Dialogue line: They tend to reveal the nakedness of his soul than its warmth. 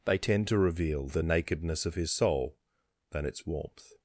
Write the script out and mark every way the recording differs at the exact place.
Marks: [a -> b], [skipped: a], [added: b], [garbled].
They tend to reveal the nakedness of his soul than its warmth.